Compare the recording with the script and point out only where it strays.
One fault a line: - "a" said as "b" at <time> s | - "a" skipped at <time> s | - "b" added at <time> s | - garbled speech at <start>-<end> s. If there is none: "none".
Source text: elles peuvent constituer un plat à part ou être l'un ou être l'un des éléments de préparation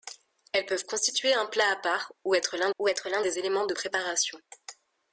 none